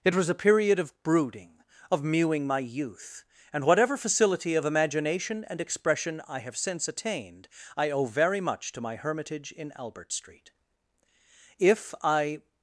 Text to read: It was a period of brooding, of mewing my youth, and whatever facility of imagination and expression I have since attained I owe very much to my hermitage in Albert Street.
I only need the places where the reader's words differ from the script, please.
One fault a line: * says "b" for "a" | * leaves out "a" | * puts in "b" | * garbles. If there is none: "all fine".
* puts in "If I"